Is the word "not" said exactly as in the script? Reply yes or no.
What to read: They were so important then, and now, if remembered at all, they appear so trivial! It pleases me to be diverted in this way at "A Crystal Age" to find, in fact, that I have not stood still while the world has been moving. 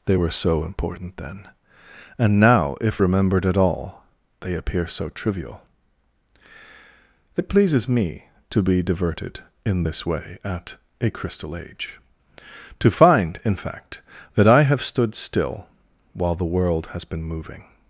no